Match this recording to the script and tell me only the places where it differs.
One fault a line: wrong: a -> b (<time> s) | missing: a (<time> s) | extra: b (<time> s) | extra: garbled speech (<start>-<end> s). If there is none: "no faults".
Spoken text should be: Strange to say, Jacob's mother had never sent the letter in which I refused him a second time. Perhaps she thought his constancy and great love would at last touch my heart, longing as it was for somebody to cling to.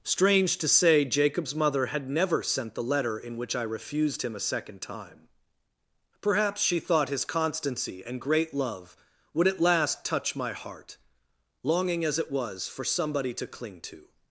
no faults